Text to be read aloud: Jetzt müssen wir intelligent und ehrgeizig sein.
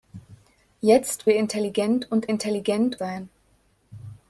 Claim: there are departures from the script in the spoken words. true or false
true